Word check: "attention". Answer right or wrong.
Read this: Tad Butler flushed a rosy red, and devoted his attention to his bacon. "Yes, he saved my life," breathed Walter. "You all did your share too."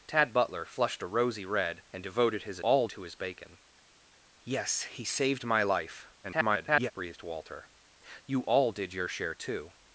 wrong